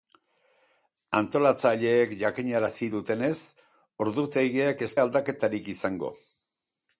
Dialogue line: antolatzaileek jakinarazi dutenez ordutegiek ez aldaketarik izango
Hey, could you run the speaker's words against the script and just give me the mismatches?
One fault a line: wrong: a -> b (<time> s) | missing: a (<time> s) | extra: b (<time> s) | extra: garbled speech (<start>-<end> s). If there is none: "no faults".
no faults